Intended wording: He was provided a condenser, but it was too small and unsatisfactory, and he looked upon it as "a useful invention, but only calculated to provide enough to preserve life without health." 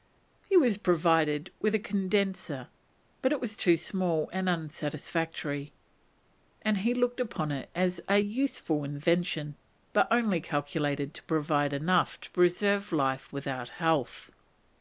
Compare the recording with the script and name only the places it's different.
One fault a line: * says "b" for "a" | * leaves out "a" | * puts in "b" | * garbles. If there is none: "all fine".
* puts in "with"